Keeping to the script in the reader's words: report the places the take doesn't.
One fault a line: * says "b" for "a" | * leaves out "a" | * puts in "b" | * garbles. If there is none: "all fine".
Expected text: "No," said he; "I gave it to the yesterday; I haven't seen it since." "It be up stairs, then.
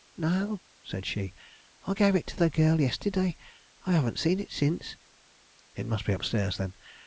* says "she" for "he"
* puts in "girl"
* puts in "must"